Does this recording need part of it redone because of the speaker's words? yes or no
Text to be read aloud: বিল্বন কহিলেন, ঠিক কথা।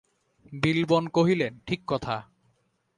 no